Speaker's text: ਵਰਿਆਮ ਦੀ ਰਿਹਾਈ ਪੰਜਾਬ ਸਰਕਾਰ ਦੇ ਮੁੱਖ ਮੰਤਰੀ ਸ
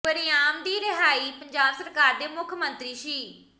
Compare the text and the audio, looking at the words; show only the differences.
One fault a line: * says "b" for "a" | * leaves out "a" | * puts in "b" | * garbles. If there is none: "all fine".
all fine